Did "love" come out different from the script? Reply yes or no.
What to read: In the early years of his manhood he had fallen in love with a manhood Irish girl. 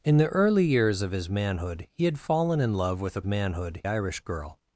no